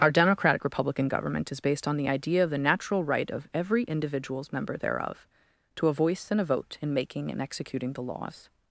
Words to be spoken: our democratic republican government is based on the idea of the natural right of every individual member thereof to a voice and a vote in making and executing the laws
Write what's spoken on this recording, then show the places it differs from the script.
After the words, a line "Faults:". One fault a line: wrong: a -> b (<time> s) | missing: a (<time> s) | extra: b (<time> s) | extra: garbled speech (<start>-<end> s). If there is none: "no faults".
our democratic republican government is based on the idea of the natural right of every individuals member thereof to a voice and a vote in making and executing the laws
Faults:
wrong: individual -> individuals (3.8 s)